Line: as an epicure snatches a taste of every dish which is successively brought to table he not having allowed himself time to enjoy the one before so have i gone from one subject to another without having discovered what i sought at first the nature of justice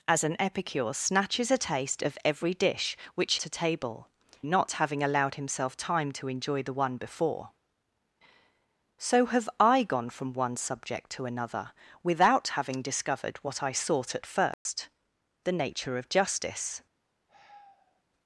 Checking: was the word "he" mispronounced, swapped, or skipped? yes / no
yes